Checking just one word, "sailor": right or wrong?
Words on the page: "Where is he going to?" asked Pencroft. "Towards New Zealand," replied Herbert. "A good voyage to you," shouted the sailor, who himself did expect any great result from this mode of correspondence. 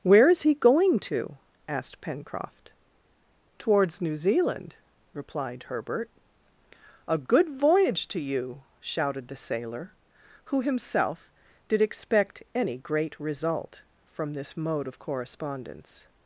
right